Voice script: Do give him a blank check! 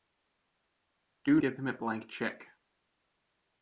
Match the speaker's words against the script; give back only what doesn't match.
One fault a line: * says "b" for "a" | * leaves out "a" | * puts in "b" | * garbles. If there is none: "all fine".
all fine